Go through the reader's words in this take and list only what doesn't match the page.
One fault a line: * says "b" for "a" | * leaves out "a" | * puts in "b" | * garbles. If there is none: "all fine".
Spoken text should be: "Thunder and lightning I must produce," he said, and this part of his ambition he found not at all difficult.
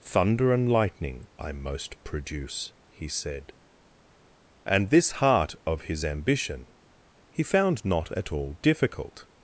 * says "most" for "must"
* says "heart" for "part"